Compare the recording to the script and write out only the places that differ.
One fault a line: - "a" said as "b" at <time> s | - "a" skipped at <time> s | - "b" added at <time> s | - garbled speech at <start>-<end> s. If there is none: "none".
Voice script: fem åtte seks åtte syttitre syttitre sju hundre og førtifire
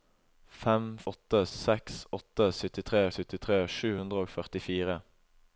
none